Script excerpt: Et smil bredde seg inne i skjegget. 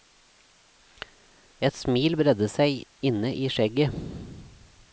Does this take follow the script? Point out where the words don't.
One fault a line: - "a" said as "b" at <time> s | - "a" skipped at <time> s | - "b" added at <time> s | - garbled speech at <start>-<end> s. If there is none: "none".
none